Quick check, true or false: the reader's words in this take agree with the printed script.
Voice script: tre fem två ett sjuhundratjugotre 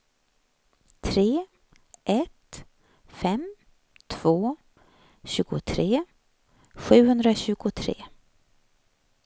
false